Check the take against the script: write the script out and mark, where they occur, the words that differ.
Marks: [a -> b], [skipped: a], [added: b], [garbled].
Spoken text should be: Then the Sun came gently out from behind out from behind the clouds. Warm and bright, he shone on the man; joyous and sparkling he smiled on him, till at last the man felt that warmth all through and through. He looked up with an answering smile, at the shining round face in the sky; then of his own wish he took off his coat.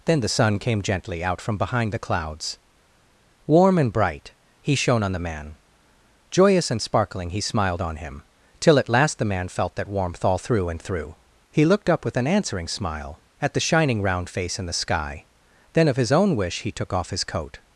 Then the Sun came gently out from behind [skipped: out from behind] the clouds. Warm and bright, he shone on the man; joyous and sparkling he smiled on him, till at last the man felt that warmth all through and through. He looked up with an answering smile, at the shining round face in the sky; then of his own wish he took off his coat.